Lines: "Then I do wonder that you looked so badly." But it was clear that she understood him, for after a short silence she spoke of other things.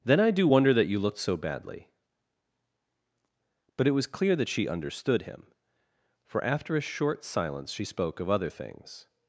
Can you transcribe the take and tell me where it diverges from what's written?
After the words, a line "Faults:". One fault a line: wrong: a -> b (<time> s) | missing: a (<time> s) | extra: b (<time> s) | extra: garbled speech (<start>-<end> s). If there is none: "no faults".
"Then I do wonder that you looked so badly." But it was clear that she understood him, for after a short silence she spoke of other things.
Faults:
no faults